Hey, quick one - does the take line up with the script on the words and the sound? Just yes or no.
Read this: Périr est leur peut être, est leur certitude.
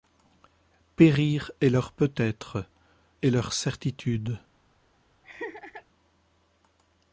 no